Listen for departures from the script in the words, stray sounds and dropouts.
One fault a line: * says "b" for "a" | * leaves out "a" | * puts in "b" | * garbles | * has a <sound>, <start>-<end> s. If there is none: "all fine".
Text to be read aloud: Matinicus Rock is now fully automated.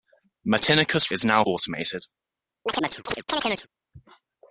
* leaves out "Rock"
* leaves out "fully"
* has a chirp, 2.7-3.7 s